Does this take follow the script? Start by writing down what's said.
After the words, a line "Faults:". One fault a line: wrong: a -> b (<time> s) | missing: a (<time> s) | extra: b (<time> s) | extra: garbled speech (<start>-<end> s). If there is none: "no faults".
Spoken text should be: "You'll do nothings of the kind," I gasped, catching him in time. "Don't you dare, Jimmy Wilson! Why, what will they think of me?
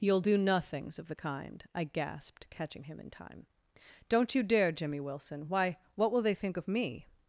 "You'll do nothings of the kind," I gasped, catching him in time. "Don't you dare, Jimmy Wilson! Why, what will they think of me?
Faults:
no faults